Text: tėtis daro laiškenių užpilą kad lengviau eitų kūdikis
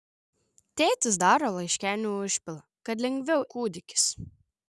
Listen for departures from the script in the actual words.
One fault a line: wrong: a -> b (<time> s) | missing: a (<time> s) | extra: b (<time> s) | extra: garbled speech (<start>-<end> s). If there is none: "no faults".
missing: eitų (3.5 s)